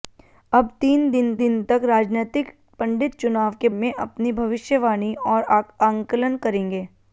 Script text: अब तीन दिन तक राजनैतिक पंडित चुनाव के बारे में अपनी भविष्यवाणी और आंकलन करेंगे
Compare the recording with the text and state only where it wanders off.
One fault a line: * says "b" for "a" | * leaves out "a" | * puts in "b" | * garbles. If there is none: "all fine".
* puts in "दिन"
* leaves out "बारे"